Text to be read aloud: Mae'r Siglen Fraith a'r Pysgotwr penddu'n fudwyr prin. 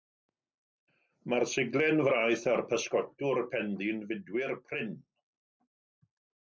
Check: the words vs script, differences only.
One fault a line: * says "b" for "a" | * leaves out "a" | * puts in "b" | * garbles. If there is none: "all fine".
all fine